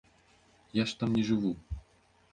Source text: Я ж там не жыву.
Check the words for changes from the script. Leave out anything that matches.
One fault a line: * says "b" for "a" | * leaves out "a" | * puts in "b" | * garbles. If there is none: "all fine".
all fine